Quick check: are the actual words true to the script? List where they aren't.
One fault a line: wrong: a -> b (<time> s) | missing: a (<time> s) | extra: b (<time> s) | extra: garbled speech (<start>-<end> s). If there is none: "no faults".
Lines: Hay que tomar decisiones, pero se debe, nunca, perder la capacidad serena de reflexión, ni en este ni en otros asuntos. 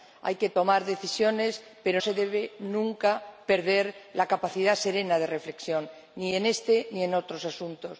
no faults